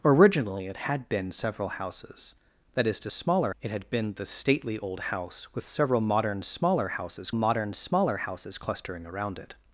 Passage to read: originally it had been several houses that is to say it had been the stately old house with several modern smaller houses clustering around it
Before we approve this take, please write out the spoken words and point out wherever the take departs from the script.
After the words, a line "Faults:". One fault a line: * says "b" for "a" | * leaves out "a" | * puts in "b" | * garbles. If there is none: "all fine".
originally it had been several houses that is to smaller it had been the stately old house with several modern smaller houses modern smaller houses clustering around it
Faults:
* says "smaller" for "say"
* puts in "modern smaller houses"